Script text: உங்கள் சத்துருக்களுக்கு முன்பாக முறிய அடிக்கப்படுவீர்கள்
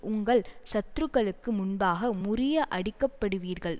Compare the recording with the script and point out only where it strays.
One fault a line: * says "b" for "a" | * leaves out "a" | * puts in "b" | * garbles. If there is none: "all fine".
all fine